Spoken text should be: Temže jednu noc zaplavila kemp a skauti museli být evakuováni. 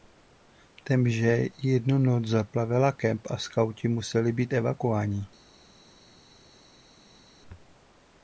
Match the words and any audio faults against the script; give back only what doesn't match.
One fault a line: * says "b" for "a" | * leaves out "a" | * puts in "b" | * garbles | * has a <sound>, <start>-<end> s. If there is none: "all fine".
all fine